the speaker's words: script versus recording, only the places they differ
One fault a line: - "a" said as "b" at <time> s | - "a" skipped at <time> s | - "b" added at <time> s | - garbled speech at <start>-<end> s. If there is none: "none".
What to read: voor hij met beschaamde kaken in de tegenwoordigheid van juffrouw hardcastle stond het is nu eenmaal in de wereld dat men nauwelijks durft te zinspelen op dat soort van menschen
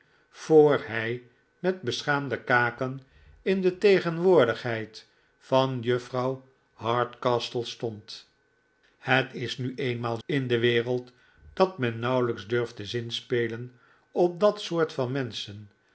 none